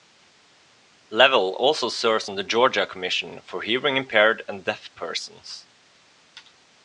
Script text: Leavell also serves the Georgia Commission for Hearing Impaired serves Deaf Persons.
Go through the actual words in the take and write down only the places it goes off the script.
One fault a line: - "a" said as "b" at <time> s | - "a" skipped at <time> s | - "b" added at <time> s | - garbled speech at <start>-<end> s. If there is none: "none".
- "on" added at 2.3 s
- "serves" said as "and" at 4.5 s